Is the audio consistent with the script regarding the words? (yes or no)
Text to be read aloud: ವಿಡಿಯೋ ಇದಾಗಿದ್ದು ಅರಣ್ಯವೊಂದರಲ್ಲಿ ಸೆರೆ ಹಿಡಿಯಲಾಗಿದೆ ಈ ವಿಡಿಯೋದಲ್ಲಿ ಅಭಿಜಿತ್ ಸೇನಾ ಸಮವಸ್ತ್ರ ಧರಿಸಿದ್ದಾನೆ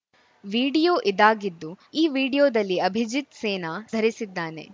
no